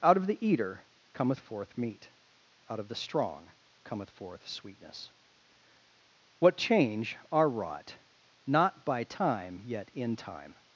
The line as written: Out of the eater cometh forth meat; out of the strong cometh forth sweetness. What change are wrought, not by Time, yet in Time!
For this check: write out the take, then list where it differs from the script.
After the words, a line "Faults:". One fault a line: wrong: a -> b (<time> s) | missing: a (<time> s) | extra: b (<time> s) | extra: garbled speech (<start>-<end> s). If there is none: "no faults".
Out of the eater cometh forth meat; out of the strong cometh forth sweetness. What change are wrought, not by Time, yet in Time!
Faults:
no faults